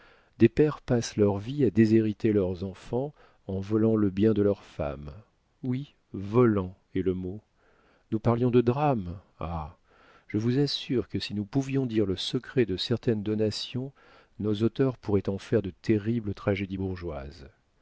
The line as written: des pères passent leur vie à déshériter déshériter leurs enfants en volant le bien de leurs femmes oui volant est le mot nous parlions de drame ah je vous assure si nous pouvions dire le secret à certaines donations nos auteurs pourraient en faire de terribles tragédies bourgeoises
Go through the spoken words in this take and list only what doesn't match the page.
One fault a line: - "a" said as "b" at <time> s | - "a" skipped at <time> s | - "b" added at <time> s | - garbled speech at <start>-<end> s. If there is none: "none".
- "déshériter" skipped at 2.3 s
- "que" added at 11.1 s
- "à" said as "de" at 12.6 s